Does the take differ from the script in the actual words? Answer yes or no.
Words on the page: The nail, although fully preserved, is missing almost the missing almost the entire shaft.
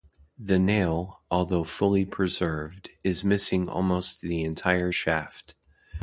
yes